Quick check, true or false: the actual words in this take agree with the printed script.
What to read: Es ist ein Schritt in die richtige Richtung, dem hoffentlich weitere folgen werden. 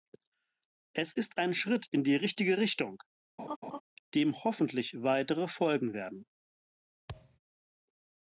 true